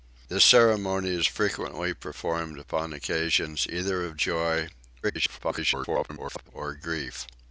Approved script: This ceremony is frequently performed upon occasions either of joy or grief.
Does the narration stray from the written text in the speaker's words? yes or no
yes